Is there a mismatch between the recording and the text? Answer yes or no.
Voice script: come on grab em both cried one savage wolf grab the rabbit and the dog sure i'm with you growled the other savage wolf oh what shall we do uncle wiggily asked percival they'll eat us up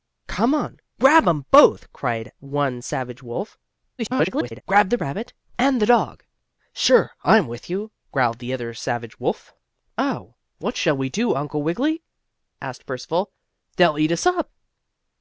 yes